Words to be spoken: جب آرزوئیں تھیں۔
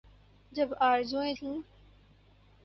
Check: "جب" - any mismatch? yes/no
no